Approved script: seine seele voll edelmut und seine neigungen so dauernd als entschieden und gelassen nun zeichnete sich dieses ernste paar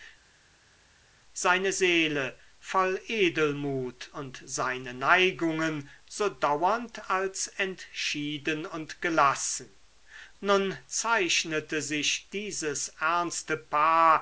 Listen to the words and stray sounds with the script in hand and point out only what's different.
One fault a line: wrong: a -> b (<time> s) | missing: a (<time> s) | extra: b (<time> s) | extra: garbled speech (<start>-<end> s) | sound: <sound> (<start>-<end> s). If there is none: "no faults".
no faults